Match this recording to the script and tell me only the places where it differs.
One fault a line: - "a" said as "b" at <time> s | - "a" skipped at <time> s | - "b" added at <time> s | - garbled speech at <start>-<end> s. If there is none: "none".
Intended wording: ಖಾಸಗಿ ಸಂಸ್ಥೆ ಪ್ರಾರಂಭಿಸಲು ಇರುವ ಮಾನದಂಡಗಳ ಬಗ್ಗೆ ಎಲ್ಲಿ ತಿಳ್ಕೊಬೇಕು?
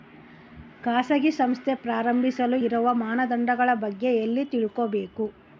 none